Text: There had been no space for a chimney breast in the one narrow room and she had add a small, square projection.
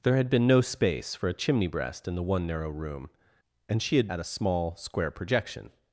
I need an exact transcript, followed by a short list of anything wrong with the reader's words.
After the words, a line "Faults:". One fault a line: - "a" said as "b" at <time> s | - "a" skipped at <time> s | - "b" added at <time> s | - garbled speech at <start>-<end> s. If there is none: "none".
There had been no space for a chimney breast in the one narrow room and she had add a small, square projection.
Faults:
none